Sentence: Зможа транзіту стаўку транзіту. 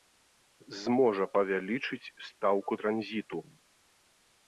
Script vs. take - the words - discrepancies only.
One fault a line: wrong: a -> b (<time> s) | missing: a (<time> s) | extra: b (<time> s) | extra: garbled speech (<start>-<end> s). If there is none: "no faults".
wrong: транзіту -> павялічыць (1.4 s)